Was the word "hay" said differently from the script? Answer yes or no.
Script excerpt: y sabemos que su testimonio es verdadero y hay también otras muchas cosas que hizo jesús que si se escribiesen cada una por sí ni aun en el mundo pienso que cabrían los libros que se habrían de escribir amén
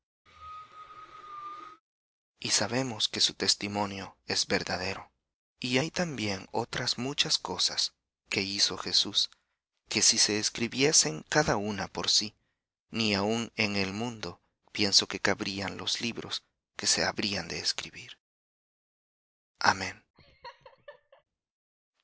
no